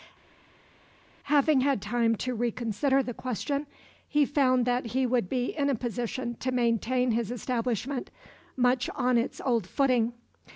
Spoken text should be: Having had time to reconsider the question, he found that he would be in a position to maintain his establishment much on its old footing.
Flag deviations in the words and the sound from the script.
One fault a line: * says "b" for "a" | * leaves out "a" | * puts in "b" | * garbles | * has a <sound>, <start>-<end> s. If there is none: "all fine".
all fine